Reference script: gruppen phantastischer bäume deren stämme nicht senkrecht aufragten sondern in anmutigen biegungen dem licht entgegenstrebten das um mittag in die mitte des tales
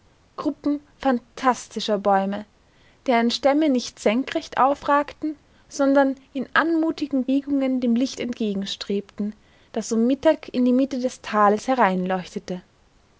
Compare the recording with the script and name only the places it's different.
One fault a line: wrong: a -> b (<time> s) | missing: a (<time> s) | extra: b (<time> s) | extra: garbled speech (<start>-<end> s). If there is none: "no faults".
no faults